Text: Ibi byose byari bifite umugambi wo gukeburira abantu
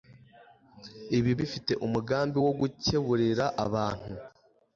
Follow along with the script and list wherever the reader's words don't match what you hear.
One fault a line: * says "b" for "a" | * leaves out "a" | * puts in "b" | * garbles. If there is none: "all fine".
* leaves out "byose byari"